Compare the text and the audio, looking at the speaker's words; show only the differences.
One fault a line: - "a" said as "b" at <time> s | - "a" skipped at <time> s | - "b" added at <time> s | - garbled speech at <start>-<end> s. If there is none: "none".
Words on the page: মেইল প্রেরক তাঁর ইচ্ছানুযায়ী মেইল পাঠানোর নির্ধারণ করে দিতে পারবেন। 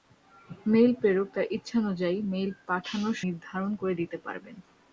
none